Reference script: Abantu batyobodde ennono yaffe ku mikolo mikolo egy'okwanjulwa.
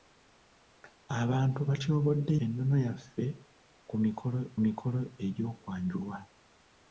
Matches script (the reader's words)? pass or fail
pass